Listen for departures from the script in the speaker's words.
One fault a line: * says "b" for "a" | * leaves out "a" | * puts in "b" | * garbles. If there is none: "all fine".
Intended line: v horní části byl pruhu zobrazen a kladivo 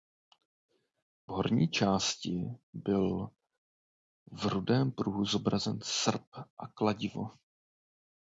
* puts in "v rudém"
* puts in "srp"